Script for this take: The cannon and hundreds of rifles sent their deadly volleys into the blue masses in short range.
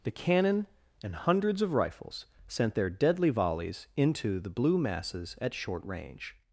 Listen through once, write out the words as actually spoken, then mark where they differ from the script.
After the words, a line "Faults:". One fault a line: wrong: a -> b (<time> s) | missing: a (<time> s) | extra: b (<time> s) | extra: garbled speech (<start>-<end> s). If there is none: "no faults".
The cannon and hundreds of rifles sent their deadly volleys into the blue masses at short range.
Faults:
wrong: in -> at (5.4 s)